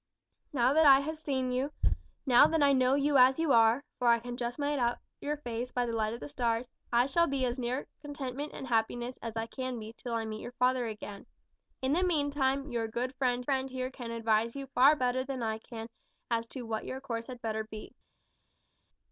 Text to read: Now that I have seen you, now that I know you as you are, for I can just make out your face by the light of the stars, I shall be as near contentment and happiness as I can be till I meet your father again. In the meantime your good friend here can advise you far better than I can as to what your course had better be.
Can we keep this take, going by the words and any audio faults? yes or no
no